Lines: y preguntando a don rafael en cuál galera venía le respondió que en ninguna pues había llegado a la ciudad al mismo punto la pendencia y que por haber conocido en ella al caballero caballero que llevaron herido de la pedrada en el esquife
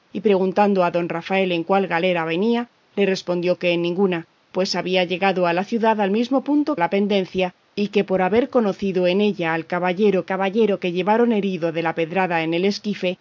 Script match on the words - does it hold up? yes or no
yes